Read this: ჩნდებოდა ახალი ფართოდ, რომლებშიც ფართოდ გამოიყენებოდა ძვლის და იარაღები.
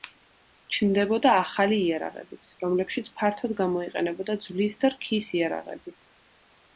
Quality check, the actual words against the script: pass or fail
fail